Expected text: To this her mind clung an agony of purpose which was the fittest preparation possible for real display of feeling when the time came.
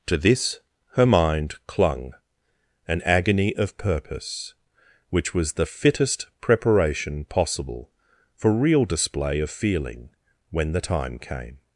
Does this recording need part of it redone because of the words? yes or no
no